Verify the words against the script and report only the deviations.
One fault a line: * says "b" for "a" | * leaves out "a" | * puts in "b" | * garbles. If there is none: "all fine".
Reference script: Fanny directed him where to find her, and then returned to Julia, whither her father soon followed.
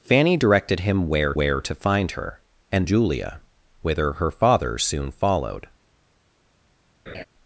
* puts in "where"
* leaves out "then returned to"